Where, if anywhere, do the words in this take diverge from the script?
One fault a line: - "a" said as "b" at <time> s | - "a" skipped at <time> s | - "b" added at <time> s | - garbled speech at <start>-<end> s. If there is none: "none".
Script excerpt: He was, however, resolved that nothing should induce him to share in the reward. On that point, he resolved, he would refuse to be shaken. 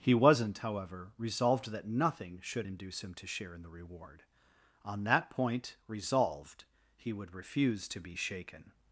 - "was" said as "wasn't" at 0.1 s
- "he" skipped at 5.7 s